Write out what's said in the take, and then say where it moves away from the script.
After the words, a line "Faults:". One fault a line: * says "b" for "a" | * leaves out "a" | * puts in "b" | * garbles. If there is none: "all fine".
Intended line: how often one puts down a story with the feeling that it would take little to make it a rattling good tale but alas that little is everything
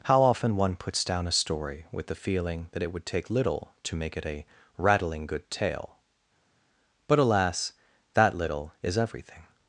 how often one puts down a story with the feeling that it would take little to make it a rattling good tale but alas that little is everything
Faults:
all fine